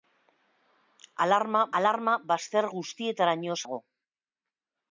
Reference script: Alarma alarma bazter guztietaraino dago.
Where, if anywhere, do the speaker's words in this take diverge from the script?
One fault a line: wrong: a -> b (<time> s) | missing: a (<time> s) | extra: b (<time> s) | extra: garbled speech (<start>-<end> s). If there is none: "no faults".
no faults